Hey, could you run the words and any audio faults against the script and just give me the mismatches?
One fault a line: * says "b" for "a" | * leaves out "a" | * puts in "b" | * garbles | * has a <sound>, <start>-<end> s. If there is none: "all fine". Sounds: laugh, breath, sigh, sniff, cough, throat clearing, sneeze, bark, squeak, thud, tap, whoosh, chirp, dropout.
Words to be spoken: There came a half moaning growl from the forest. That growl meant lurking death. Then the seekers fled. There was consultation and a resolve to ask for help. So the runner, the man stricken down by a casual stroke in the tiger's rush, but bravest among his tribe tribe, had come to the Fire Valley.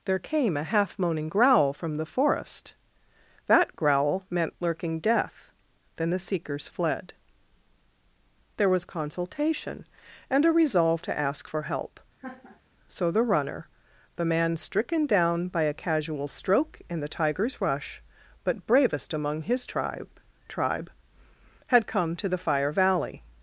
* has a laugh, 12.2-12.6 s